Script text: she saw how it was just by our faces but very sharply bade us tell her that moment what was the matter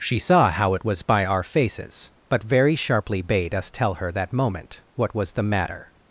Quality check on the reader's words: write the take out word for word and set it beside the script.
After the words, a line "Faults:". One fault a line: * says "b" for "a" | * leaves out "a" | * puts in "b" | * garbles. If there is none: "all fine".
she saw how it was by our faces but very sharply bade us tell her that moment what was the matter
Faults:
* leaves out "just"